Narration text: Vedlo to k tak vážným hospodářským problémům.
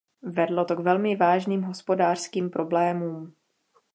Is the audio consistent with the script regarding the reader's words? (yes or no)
no